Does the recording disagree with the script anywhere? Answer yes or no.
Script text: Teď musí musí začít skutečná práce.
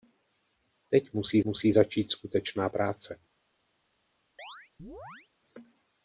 no